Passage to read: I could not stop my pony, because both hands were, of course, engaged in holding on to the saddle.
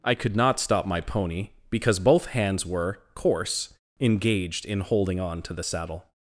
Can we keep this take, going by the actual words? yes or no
no